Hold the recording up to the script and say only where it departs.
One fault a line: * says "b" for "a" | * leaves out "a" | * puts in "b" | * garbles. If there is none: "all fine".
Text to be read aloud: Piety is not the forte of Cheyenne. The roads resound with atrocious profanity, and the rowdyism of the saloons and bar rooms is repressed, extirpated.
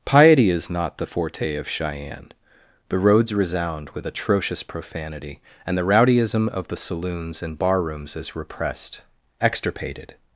all fine